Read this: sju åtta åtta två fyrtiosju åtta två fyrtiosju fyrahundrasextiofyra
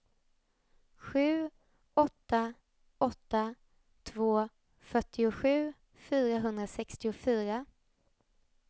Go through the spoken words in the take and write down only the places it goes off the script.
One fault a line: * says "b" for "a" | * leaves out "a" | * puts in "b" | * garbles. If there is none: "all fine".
* leaves out "åtta två fyrtiosju"